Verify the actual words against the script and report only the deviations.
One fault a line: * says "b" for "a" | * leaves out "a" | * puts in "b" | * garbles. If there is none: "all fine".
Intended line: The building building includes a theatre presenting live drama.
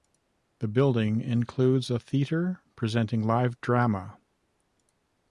* leaves out "building"